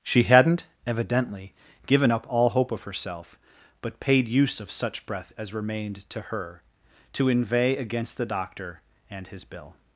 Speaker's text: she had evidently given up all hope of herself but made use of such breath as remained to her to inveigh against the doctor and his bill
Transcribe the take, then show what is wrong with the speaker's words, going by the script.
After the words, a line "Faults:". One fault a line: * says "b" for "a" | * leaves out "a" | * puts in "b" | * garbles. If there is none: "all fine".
she hadn't evidently given up all hope of herself but paid use of such breath as remained to her to inveigh against the doctor and his bill
Faults:
* says "hadn't" for "had"
* says "paid" for "made"